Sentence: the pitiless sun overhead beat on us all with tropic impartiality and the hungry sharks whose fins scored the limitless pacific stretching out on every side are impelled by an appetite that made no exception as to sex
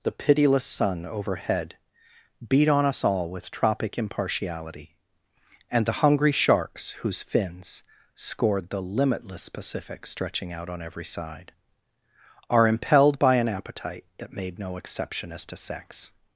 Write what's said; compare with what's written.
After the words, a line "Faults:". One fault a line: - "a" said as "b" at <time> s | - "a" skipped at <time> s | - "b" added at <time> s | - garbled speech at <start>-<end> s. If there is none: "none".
the pitiless sun overhead beat on us all with tropic impartiality and the hungry sharks whose fins scored the limitless pacific stretching out on every side are impelled by an appetite that made no exception as to sex
Faults:
none